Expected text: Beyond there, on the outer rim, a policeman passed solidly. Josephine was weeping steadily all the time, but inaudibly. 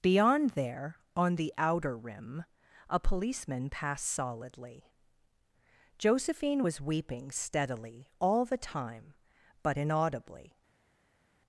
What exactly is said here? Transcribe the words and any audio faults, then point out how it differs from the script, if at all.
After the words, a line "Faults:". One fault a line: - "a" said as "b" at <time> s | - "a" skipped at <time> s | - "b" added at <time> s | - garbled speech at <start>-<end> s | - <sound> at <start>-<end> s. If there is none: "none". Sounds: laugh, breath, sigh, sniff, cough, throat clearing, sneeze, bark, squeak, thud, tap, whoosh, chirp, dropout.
Beyond there, on the outer rim, a policeman passed solidly. Josephine was weeping steadily all the time, but inaudibly.
Faults:
none